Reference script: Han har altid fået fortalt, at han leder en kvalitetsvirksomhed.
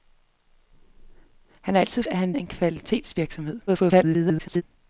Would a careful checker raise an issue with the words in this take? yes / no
yes